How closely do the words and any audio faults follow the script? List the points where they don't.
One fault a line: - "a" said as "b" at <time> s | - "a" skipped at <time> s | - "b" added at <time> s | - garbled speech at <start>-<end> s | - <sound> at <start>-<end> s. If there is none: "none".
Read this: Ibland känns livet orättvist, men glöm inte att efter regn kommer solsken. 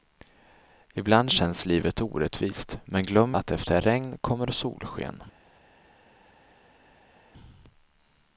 - "inte" skipped at 3.4 s